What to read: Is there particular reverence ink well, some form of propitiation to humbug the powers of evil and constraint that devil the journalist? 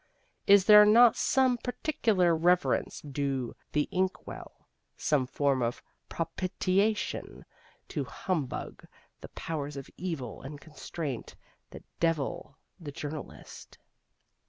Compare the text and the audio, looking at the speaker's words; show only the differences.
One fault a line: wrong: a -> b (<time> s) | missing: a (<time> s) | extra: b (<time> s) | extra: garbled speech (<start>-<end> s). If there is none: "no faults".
extra: not some (0.8 s)
extra: due the (3.0 s)